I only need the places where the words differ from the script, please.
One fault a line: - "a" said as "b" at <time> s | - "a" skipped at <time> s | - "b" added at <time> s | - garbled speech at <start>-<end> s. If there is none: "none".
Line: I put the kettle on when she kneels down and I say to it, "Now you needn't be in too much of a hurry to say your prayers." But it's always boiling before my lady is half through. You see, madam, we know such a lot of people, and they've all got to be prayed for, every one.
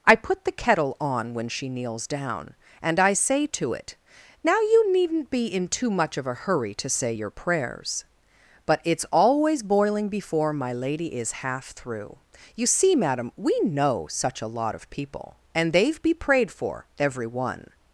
- "all got to" skipped at 16.0 s